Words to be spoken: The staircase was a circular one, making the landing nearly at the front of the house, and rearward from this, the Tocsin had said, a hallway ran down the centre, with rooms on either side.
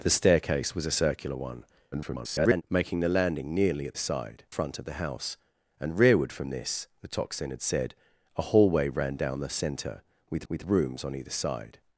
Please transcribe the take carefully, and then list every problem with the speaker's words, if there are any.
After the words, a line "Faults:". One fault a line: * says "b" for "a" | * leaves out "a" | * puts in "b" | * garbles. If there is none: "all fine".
The staircase was a circular one, [garbled] making the landing nearly at side front of the house, and rearward from this, the Tocsin had said, a hallway ran down the centre, with with rooms on either side.
Faults:
* garbles
* says "side" for "the"
* puts in "with"